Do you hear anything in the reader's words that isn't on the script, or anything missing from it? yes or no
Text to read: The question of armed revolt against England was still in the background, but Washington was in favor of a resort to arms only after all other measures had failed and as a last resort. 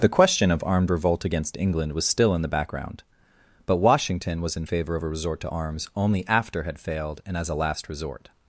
yes